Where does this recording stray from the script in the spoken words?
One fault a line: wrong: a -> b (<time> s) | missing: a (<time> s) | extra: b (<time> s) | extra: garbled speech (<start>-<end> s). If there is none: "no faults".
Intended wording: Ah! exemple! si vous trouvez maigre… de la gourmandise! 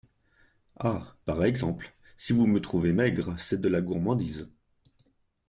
extra: par (1.2 s)
extra: me (2.5 s)
extra: c'est (3.4 s)